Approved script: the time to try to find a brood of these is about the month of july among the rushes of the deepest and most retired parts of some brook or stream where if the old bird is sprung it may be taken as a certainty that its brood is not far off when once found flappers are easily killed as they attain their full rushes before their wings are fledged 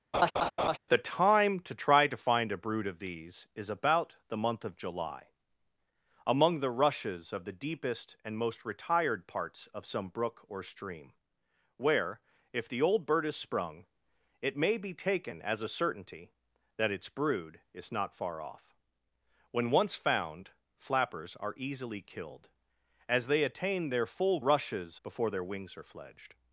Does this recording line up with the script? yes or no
yes